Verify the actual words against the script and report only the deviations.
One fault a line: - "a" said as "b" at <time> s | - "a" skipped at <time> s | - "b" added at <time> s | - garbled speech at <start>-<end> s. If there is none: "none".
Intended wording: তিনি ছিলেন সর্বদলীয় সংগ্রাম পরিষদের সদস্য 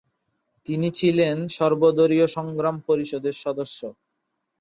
none